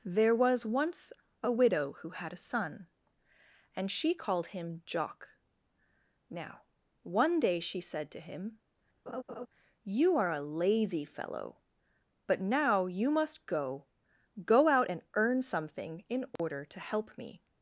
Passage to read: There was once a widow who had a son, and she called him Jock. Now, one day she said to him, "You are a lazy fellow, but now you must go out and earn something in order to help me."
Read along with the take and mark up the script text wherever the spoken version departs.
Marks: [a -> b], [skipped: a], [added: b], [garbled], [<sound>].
There was once a widow who had a son, and she called him Jock. Now, one day she said to him, [laugh] "You are a lazy fellow, but now you must go [added: go] out and earn something in order [dropout] to help me."